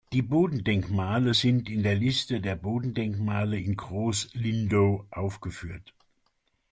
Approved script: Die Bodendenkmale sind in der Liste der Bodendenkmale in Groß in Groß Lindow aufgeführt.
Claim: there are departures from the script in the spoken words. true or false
true